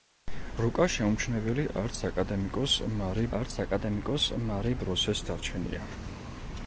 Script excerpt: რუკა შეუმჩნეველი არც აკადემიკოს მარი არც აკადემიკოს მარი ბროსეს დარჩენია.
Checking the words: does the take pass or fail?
pass